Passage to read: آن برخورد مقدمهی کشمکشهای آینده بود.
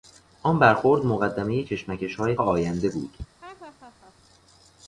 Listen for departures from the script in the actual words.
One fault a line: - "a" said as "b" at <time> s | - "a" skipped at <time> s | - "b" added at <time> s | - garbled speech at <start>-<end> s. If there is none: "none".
none